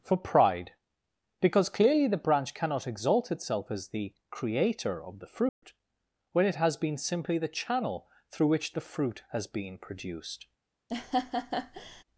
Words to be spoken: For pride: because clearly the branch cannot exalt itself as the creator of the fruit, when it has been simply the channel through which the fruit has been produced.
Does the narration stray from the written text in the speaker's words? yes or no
no